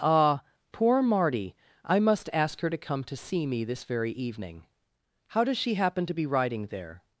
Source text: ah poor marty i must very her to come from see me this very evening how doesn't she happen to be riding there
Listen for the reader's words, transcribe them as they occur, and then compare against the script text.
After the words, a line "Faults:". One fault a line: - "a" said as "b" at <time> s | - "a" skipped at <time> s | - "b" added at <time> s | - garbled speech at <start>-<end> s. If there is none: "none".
ah poor marty i must ask her to come to see me this very evening how does she happen to be riding there
Faults:
- "very" said as "ask" at 2.3 s
- "from" said as "to" at 3.0 s
- "doesn't" said as "does" at 5.4 s